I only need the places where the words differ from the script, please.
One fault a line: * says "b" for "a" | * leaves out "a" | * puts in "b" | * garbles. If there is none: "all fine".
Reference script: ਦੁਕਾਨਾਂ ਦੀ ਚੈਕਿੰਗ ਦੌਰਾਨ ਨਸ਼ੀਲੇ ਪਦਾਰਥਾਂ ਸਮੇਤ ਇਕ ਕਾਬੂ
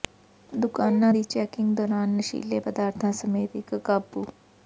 all fine